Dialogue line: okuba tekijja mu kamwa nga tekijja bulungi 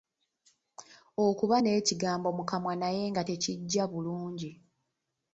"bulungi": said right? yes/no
yes